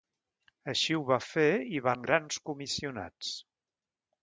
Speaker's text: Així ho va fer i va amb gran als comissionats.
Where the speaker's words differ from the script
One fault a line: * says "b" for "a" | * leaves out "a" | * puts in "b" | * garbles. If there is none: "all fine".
all fine